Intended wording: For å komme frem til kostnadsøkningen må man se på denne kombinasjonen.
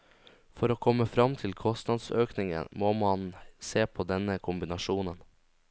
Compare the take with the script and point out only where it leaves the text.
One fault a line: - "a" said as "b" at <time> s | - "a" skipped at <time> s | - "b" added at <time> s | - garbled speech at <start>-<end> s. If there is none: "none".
none